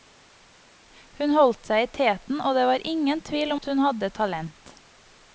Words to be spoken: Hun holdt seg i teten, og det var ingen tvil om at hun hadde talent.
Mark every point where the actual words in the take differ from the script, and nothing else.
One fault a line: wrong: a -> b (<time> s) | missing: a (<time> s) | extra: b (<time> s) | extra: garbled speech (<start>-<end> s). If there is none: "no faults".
missing: om (3.5 s)